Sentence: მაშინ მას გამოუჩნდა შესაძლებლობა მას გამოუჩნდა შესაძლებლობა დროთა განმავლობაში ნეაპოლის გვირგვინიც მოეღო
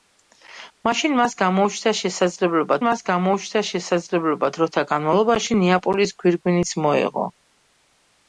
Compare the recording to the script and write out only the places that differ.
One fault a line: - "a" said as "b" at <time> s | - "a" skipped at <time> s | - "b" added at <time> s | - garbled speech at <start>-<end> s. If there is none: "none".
none